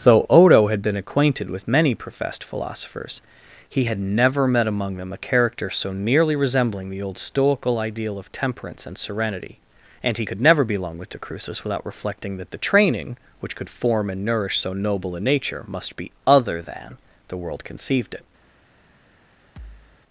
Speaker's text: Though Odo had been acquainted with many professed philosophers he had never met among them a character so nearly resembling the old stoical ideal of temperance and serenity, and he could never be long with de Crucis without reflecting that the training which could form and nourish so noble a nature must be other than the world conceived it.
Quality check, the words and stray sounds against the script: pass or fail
fail